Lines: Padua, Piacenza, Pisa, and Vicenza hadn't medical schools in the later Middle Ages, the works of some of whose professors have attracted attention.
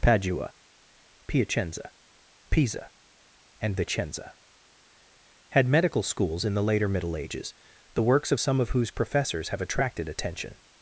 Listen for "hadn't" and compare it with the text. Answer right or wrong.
wrong